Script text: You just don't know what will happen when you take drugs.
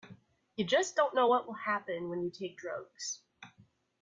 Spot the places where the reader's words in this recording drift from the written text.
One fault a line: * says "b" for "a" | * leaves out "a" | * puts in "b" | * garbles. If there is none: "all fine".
all fine